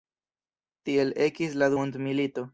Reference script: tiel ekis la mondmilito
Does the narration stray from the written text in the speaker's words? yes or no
no